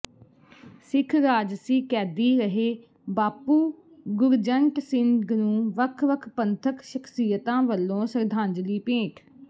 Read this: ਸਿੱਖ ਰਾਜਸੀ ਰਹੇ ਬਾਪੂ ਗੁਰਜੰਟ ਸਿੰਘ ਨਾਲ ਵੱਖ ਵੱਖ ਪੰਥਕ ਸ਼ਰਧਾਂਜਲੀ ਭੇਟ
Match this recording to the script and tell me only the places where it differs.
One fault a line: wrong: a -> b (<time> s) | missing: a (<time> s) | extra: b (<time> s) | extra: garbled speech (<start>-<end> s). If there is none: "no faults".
extra: ਕੈਦੀ (1.9 s)
wrong: ਨਾਲ -> ਨੂੰ (5.3 s)
extra: ਸ਼ਖ਼ਸੀਅਤਾਂ ਵੱਲੋਂ (6.8 s)